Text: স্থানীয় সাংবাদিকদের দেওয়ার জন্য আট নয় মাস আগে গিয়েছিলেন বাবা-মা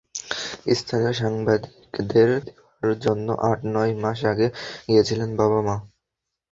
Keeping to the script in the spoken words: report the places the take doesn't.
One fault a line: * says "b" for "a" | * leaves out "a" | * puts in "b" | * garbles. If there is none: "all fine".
all fine